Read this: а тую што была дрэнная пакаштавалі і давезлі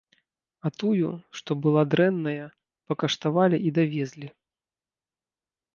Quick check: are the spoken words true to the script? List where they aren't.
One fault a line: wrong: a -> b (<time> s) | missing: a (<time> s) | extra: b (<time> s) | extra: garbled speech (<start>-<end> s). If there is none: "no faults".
no faults